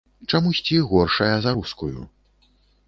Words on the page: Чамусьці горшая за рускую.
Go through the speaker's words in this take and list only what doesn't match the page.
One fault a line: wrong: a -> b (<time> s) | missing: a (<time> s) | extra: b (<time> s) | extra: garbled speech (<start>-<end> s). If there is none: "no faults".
no faults